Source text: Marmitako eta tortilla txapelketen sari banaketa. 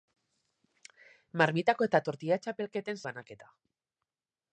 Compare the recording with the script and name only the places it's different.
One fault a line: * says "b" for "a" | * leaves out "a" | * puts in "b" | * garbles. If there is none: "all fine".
* leaves out "sari"